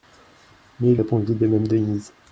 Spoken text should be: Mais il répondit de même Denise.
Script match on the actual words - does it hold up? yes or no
yes